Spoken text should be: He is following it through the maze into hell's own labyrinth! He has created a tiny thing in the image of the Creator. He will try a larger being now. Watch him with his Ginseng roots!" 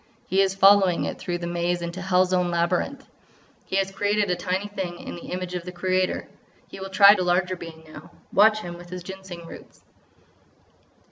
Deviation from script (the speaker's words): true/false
false